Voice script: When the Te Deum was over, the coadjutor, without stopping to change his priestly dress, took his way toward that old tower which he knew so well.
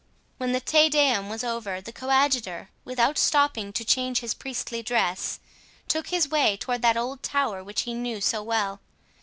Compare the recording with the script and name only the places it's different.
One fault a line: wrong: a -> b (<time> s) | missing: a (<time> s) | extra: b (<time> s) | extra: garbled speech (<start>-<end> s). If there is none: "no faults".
no faults